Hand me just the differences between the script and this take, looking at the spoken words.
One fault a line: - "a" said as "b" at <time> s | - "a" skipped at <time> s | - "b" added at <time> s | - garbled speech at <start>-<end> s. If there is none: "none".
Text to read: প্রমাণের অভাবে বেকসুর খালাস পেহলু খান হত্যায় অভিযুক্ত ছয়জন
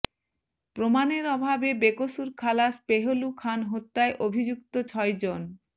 none